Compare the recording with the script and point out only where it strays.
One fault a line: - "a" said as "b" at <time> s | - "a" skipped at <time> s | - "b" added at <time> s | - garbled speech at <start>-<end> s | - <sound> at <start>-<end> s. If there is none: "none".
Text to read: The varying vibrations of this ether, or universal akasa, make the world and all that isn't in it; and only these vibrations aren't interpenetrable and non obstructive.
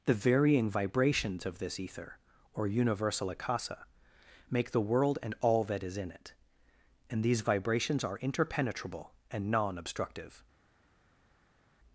- "isn't" said as "is" at 5.8 s
- "only" skipped at 7.2 s
- "aren't" said as "are" at 8.0 s